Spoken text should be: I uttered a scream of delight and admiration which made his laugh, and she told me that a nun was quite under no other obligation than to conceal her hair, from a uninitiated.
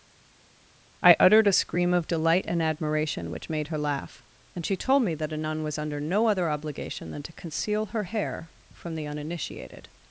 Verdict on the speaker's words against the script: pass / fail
fail